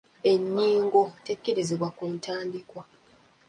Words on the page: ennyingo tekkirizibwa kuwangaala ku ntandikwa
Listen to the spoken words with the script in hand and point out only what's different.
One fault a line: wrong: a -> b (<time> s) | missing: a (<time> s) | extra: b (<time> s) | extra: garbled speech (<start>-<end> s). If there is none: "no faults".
missing: kuwangaala (1.9 s)